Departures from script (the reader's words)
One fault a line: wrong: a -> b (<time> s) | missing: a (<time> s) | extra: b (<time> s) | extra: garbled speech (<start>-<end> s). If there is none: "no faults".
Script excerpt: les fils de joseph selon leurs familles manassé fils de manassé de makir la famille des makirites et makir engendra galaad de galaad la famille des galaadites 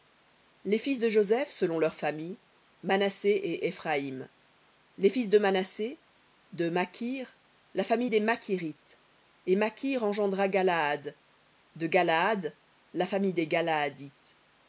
extra: et éphraïm les (3.3 s)